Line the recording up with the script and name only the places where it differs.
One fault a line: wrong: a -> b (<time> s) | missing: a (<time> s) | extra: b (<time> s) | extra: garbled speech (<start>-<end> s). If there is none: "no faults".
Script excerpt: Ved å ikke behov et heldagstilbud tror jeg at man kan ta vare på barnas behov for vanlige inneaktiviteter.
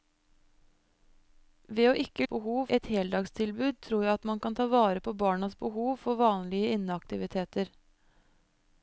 no faults